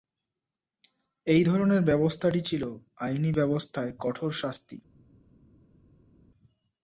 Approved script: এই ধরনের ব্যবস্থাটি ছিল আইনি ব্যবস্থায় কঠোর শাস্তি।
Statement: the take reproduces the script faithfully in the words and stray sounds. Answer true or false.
true